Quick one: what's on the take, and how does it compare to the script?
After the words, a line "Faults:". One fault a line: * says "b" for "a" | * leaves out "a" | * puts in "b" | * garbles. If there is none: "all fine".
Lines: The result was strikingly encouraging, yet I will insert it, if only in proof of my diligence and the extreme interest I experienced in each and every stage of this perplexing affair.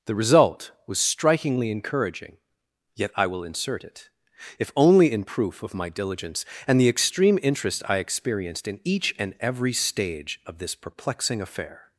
The result was strikingly encouraging, yet I will insert it, if only in proof of my diligence and the extreme interest I experienced in each and every stage of this perplexing affair.
Faults:
all fine